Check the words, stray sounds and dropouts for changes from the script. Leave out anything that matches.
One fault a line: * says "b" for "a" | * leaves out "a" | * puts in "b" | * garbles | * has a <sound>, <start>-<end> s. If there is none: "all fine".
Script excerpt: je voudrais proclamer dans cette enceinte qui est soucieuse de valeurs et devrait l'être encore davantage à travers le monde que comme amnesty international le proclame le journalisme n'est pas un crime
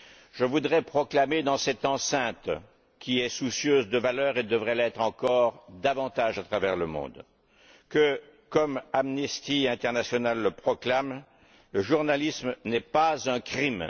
all fine